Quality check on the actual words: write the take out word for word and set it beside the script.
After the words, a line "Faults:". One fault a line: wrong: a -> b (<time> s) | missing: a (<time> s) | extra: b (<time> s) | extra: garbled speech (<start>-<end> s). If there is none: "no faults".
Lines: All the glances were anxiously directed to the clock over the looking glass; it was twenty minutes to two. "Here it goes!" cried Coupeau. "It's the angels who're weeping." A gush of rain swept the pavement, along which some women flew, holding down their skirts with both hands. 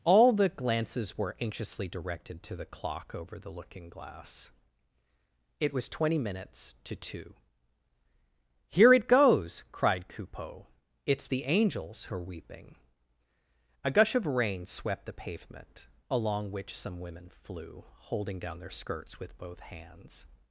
All the glances were anxiously directed to the clock over the looking glass; it was twenty minutes to two. "Here it goes!" cried Coupeau. "It's the angels who're weeping." A gush of rain swept the pavement, along which some women flew, holding down their skirts with both hands.
Faults:
no faults